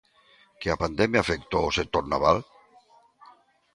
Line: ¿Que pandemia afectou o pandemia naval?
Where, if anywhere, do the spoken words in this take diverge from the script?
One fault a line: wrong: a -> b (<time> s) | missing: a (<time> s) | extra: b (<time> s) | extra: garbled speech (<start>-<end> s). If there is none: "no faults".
extra: a (0.7 s)
wrong: pandemia -> sector (1.8 s)